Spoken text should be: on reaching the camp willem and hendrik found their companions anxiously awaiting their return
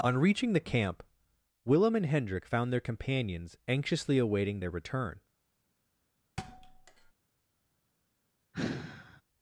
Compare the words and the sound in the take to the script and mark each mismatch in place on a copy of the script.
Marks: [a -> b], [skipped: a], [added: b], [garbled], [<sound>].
on reaching the camp willem and hendrik found their companions anxiously awaiting their return [thud] [sigh]